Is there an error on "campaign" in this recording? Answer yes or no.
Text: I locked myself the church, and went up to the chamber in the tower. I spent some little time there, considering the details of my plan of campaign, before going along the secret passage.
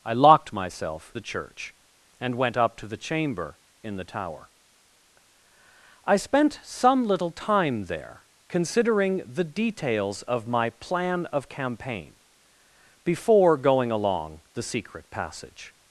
no